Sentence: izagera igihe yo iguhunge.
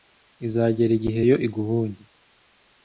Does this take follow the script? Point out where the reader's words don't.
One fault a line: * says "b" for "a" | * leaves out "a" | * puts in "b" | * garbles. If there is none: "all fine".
all fine